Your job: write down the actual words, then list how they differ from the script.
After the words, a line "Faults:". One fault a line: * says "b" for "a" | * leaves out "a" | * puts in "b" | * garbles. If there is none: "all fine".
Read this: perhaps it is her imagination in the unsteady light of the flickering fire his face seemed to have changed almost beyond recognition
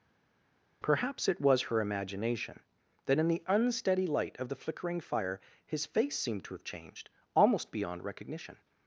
perhaps it was her imagination that in the unsteady light of the flickering fire his face seemed to have changed almost beyond recognition
Faults:
* says "was" for "is"
* puts in "that"